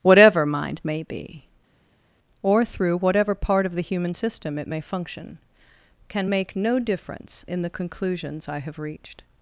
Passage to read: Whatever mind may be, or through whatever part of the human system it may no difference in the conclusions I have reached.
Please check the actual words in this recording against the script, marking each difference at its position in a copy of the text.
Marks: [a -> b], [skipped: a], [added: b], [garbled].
Whatever mind may be, or through whatever part of the human system it may [added: function can make] no difference in the conclusions I have reached.